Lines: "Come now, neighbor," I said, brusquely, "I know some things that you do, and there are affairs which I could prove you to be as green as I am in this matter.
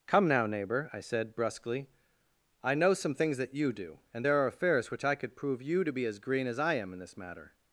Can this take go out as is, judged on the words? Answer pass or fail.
pass